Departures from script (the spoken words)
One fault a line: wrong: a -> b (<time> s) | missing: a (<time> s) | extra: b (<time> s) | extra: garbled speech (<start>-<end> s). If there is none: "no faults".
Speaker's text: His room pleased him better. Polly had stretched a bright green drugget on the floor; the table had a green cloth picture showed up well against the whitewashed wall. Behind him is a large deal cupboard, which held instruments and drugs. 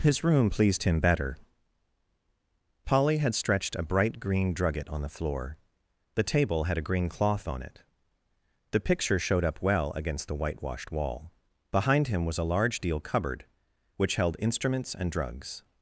extra: on it the (7.5 s)
wrong: is -> was (12.2 s)